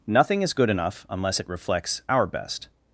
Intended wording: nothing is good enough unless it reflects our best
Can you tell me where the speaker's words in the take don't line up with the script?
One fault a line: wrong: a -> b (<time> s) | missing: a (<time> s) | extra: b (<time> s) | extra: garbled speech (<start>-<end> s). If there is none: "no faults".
no faults